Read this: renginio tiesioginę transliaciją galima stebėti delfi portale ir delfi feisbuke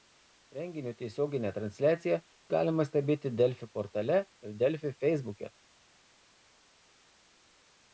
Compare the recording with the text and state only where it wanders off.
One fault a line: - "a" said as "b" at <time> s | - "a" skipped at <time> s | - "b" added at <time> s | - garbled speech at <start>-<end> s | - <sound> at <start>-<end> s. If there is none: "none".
none